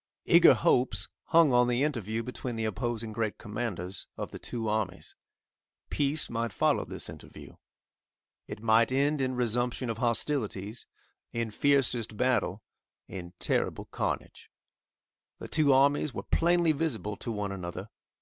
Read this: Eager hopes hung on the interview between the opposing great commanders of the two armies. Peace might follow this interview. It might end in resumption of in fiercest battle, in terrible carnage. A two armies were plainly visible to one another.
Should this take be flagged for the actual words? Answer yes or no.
yes